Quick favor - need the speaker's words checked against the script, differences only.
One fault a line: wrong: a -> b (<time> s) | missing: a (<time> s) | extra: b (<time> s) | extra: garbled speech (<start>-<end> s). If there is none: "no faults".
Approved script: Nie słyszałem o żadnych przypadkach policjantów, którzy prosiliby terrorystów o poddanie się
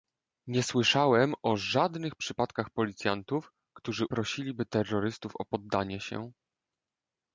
no faults